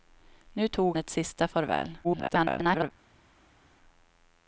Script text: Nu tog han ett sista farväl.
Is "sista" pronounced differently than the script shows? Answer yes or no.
no